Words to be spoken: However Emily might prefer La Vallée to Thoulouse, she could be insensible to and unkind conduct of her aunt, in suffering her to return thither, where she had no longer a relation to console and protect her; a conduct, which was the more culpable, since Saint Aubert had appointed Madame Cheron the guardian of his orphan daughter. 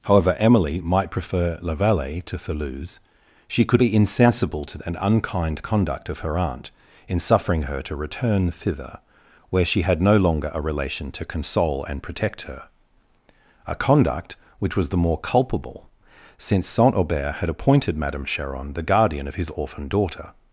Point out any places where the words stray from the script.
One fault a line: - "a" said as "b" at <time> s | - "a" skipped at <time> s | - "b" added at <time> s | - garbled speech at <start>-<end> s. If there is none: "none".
none